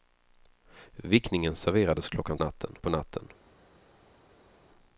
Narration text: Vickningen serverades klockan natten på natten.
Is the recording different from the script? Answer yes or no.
no